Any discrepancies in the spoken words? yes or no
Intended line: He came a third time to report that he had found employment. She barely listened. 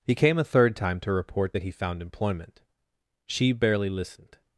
yes